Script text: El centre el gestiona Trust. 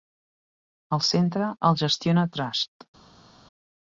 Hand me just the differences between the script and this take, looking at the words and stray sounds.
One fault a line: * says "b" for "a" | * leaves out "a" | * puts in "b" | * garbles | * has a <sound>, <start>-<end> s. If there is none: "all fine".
all fine